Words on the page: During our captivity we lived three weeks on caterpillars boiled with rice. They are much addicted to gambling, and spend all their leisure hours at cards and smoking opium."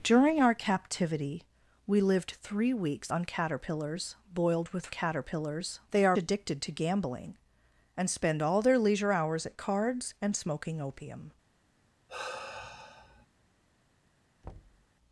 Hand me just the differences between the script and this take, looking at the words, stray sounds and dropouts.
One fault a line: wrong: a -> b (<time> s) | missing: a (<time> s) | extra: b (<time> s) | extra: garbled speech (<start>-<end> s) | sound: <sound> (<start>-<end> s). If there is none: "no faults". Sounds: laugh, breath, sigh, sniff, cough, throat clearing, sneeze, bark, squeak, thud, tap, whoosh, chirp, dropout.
wrong: rice -> caterpillars (4.9 s)
missing: much (6.2 s)
sound: sigh (12.1-13.3 s)
sound: thud (14.4-14.9 s)